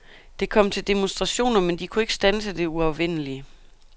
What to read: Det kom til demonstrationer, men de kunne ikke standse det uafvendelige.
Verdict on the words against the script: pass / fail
pass